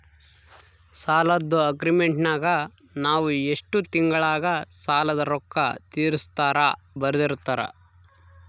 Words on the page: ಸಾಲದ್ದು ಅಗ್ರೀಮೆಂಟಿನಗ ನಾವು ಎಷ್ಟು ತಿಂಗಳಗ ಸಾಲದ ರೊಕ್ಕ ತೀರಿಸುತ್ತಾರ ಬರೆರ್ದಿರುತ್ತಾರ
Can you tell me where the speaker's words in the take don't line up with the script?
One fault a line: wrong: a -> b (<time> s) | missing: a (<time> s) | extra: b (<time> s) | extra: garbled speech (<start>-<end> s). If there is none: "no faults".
no faults